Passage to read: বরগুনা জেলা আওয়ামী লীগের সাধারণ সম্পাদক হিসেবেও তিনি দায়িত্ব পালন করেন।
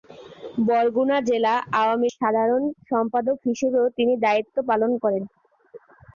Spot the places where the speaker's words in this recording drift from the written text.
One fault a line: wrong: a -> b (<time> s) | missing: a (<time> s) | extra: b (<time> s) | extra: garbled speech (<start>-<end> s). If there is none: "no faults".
missing: লীগের (2.1 s)